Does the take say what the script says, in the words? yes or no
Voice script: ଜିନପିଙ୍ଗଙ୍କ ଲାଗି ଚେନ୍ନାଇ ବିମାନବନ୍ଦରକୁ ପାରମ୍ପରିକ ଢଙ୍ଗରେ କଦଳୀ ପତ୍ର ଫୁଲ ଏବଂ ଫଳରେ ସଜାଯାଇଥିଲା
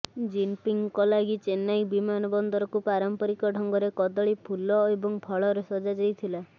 no